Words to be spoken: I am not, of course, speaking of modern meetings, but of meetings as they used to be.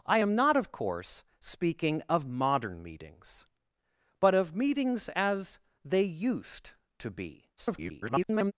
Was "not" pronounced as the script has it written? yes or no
yes